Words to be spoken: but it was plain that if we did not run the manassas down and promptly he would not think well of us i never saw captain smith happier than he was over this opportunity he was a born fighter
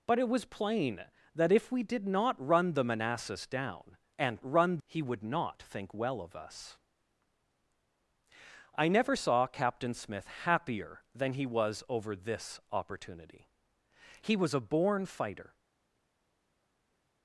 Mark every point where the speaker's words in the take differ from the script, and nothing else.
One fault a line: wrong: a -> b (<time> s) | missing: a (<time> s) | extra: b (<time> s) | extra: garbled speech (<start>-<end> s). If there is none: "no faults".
wrong: promptly -> run (4.4 s)